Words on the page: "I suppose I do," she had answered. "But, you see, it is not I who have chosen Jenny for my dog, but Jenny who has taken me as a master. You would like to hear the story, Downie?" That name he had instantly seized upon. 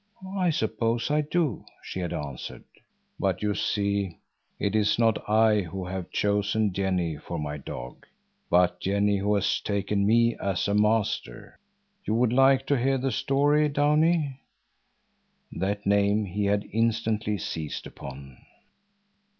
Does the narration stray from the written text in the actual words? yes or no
no